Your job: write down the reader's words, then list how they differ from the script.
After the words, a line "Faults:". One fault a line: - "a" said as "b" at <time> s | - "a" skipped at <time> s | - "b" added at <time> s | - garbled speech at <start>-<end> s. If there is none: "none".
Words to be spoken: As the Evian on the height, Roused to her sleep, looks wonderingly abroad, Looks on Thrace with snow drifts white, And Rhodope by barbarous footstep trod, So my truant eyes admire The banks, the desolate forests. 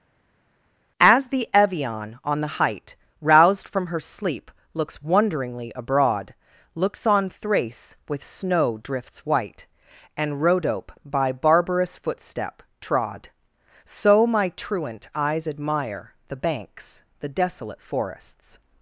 As the Evian on the height, Roused from her sleep, looks wonderingly abroad, Looks on Thrace with snow drifts white, And Rhodope by barbarous footstep trod, So my truant eyes admire The banks, the desolate forests.
Faults:
- "to" said as "from" at 3.7 s